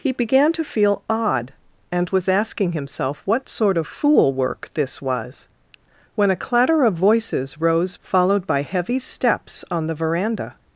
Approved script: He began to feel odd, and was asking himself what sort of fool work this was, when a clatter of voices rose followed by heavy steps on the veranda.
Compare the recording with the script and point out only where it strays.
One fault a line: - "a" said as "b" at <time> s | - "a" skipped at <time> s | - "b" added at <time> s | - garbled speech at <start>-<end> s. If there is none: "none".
none